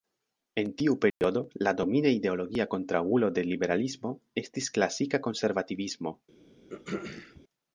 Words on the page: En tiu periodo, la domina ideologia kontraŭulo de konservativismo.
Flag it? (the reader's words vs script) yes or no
yes